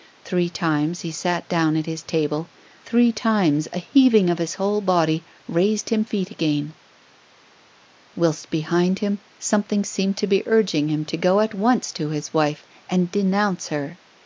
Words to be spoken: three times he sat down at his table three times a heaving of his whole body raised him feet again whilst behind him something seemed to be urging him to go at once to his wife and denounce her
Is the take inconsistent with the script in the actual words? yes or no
no